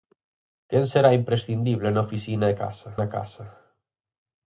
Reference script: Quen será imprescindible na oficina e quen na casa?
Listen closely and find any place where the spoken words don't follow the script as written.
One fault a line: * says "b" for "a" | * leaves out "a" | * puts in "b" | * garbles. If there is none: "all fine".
* says "casa" for "quen"